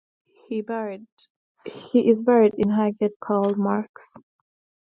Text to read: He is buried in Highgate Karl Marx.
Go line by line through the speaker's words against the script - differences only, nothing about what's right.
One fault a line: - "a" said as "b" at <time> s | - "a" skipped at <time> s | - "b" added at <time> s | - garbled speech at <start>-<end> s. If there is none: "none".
none